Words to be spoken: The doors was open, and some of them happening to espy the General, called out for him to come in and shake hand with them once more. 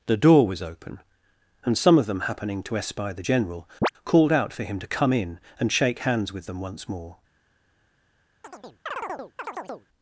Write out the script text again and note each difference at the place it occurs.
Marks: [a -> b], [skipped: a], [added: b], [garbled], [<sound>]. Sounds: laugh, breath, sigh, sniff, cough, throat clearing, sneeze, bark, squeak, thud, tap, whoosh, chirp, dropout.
The [doors -> door] was open, and some of them happening to espy the General, [chirp] called out for him to come in and shake [hand -> hands] with them once more. [chirp]